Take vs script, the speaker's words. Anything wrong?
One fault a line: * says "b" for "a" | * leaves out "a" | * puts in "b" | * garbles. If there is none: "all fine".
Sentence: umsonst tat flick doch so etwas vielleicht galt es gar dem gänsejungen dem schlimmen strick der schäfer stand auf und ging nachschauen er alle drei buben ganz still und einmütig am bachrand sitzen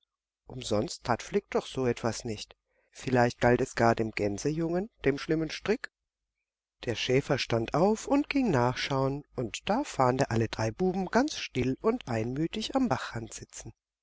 * puts in "nicht"
* puts in "und da fand"